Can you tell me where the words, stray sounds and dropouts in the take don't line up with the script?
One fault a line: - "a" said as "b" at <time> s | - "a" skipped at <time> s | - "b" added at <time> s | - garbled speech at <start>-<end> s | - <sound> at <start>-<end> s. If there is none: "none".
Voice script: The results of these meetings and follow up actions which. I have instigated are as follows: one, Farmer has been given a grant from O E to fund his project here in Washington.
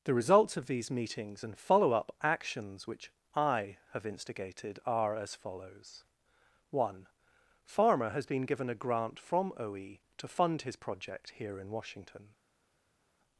none